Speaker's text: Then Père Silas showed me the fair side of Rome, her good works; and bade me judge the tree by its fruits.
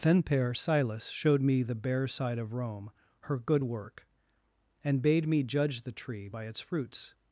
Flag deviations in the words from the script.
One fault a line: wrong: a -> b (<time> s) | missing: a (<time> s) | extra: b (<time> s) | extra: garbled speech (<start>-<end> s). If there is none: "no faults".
wrong: fair -> bare (1.8 s)
wrong: works -> work (3.6 s)